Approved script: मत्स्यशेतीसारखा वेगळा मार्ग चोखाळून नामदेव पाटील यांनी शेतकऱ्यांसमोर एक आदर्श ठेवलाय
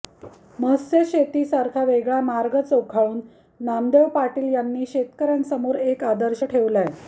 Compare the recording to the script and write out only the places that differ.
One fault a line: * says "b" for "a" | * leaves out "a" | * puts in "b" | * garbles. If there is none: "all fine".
all fine